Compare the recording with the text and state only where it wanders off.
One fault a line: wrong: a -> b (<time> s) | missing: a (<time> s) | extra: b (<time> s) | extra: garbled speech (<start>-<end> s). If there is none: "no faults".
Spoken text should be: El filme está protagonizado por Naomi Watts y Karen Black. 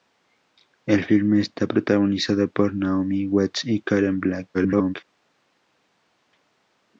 extra: garbled speech (4.5-4.9 s)